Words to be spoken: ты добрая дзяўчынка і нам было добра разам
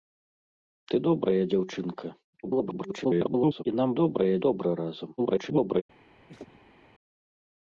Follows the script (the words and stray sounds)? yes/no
no